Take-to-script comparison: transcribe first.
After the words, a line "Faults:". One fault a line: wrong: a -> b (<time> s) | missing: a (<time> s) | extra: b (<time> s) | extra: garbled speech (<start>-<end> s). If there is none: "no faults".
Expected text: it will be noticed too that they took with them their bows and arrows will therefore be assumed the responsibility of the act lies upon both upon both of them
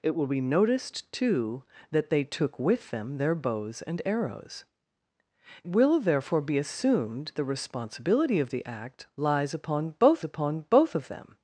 it will be noticed too that they took with them their bows and arrows will therefore be assumed the responsibility of the act lies upon both upon both of them
Faults:
no faults